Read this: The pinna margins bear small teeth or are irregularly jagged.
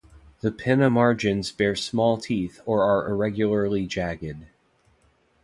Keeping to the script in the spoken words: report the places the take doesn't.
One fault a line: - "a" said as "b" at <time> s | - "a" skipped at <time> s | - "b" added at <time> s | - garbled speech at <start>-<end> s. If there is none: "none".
none